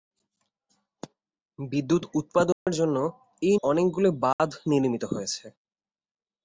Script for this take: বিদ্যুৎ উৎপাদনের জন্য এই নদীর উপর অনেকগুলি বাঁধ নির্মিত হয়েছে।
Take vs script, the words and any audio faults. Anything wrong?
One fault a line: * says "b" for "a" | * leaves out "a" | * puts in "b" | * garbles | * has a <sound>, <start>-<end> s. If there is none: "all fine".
* has a dropout, 2.5-2.7 s
* leaves out "নদীর উপর"
* has a dropout, 4.3-4.4 s